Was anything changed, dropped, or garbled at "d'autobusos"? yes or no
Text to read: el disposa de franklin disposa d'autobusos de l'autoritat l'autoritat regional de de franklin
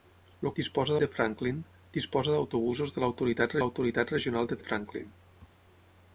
no